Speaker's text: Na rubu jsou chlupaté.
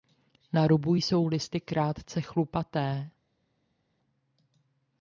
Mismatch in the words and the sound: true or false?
true